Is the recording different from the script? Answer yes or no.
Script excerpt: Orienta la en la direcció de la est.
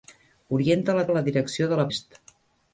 no